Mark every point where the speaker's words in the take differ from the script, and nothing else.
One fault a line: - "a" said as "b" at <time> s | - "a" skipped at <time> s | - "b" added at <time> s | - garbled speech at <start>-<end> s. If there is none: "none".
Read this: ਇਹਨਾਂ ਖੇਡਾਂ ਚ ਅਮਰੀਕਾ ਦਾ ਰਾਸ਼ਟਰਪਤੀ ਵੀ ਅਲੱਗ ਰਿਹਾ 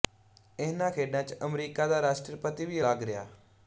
none